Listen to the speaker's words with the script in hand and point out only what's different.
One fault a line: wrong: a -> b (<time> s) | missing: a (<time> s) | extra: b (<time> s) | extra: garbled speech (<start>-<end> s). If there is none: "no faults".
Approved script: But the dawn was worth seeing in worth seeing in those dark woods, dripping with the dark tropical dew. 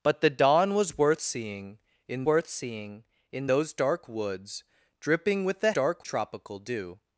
no faults